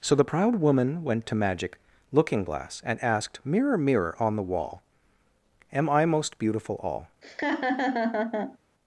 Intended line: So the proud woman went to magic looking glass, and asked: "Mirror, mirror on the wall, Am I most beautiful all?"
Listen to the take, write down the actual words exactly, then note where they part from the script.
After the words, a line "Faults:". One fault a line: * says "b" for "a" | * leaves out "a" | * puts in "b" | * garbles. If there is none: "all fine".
So the proud woman went to magic looking glass, and asked: "Mirror, mirror on the wall, Am I most beautiful all?"
Faults:
all fine